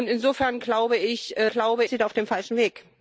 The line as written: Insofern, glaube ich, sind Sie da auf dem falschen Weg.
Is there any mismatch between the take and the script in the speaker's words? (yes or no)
yes